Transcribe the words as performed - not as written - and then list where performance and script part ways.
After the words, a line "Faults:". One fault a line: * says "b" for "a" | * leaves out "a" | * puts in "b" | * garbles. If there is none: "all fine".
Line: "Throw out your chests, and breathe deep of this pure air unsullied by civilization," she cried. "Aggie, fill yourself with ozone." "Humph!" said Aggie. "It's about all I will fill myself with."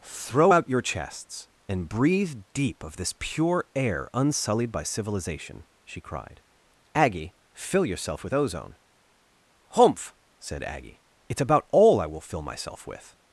"Throw out your chests, and breathe deep of this pure air unsullied by civilization," she cried. "Aggie, fill yourself with ozone." "Humph!" said Aggie. "It's about all I will fill myself with."
Faults:
all fine